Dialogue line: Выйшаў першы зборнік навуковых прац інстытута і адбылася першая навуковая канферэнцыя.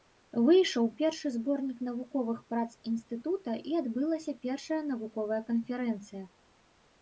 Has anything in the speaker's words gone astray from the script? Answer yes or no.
no